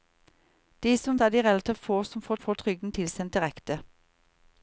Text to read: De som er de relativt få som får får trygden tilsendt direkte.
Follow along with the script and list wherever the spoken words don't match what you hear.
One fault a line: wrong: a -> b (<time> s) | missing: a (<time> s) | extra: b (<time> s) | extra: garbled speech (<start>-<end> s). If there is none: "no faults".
no faults